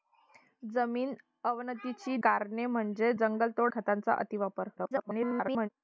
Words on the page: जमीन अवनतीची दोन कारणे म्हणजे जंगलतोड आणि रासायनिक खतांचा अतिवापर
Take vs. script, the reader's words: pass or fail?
fail